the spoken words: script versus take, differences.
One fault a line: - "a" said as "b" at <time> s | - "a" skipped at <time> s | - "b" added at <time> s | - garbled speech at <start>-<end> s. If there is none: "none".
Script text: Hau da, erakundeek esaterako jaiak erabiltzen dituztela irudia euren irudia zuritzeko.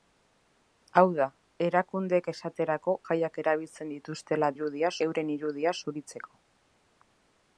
none